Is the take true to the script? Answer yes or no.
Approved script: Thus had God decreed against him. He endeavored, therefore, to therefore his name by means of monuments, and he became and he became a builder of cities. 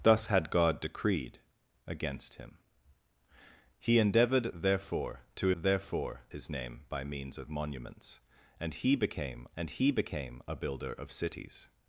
yes